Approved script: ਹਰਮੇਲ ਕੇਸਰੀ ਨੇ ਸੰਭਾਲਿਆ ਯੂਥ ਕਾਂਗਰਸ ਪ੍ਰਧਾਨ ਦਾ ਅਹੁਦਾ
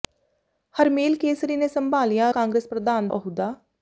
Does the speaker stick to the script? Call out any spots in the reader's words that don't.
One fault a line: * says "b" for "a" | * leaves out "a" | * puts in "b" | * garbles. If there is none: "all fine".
* leaves out "ਯੂਥ"
* leaves out "ਦਾ"